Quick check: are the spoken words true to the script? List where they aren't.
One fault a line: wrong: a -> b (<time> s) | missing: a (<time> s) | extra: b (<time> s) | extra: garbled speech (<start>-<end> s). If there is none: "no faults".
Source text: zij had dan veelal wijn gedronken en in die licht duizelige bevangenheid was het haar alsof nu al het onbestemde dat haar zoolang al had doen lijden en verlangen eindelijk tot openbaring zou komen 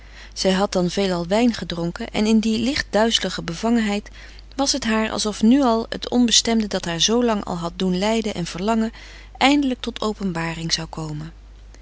no faults